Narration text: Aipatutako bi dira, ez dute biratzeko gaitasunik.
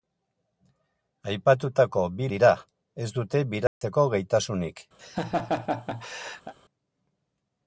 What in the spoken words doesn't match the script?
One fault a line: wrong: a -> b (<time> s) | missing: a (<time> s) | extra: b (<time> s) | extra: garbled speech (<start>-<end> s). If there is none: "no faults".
no faults